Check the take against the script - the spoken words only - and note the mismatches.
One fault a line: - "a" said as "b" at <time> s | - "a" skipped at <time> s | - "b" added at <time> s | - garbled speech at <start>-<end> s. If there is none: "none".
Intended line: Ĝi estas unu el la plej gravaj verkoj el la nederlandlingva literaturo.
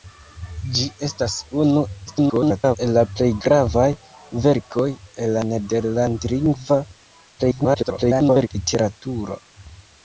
- garbled speech at 2.1-2.8 s
- garbled speech at 7.4-8.5 s